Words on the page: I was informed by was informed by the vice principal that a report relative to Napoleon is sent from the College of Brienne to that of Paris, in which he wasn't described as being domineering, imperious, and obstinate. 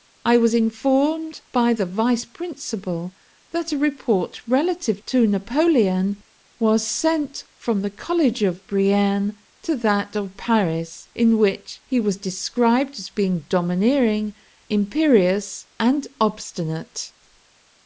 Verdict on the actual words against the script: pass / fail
fail